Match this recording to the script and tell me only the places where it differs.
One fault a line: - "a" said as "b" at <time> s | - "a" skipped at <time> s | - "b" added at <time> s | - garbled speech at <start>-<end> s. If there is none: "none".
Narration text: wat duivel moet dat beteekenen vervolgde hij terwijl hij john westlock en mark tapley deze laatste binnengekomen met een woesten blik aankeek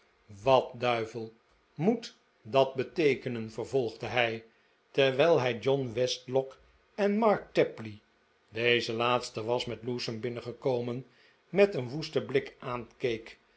- "was met lewsome" added at 9.4 s